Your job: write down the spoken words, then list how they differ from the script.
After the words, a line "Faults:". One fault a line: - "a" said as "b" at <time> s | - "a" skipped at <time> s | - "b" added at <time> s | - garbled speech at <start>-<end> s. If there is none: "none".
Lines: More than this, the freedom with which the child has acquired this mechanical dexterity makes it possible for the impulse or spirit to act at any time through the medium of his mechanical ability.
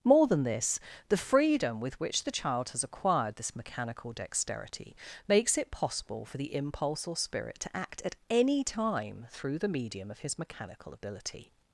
More than this, the freedom with which the child has acquired this mechanical dexterity makes it possible for the impulse or spirit to act at any time through the medium of his mechanical ability.
Faults:
none